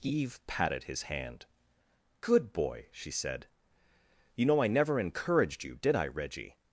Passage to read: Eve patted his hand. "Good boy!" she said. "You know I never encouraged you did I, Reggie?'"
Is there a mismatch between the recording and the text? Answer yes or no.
no